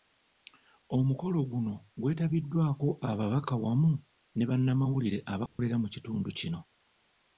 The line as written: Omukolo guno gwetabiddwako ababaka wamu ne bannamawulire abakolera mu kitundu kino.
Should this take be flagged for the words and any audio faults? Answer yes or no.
yes